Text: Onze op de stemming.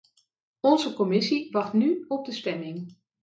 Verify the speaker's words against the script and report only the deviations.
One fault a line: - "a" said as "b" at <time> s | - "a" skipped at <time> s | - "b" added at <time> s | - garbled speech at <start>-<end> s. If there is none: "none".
- "commissie wacht nu" added at 0.9 s